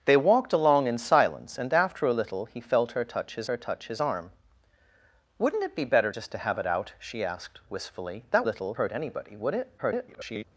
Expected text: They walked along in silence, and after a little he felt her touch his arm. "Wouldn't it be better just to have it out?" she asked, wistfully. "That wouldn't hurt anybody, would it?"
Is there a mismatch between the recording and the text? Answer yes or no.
yes